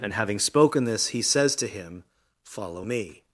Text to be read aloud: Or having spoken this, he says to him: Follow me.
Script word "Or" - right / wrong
wrong